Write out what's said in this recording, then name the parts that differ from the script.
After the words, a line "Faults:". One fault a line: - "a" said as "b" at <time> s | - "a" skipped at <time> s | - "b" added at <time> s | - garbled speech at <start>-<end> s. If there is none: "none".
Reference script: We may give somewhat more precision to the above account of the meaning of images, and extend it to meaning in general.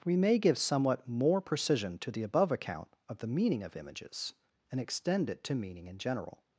We may give somewhat more precision to the above account of the meaning of images, and extend it to meaning in general.
Faults:
none